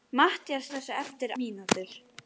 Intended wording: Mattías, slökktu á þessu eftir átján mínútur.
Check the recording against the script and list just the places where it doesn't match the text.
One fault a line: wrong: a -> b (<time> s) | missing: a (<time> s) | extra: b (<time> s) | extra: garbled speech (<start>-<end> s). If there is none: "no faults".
missing: slökktu (0.7 s)
missing: átján (1.3 s)